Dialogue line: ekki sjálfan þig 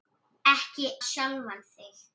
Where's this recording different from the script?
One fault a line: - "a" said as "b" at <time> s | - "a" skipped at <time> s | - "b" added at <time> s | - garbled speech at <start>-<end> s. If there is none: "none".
none